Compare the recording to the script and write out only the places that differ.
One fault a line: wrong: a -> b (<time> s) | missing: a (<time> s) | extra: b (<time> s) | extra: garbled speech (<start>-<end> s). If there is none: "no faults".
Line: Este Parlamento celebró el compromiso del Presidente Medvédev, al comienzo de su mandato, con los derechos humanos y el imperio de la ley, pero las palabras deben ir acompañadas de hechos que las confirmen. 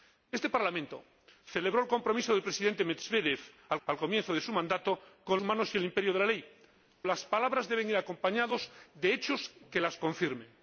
extra: al (3.9 s)
missing: los derechos (5.4 s)
missing: pero (6.4 s)